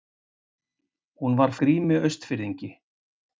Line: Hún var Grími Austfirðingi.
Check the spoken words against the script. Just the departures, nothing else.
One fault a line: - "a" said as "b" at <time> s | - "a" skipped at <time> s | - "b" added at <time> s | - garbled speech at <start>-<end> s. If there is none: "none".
none